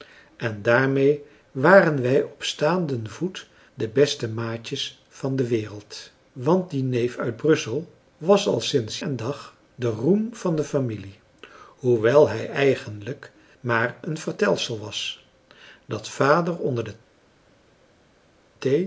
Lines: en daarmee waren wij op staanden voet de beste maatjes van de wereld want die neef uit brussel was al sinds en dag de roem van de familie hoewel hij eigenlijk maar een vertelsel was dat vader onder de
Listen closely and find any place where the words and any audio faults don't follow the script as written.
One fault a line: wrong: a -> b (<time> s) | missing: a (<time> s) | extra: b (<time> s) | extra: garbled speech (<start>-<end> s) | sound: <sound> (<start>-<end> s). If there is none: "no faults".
no faults